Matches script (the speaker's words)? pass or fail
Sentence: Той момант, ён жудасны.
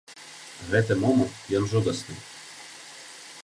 fail